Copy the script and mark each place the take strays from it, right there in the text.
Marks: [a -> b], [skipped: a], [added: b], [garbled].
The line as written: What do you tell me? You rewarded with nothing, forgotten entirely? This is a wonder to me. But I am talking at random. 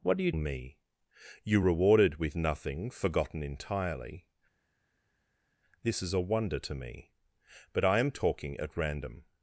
What do you [skipped: tell] me? You rewarded with nothing, forgotten entirely? This is a wonder to me. But I am talking at random.